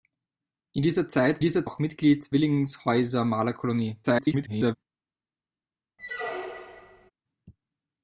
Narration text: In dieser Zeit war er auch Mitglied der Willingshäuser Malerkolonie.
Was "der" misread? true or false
true